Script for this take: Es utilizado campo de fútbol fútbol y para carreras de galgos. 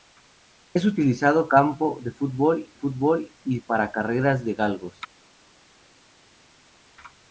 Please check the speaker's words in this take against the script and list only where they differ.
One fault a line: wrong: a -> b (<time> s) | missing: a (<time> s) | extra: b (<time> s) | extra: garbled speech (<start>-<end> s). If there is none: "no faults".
no faults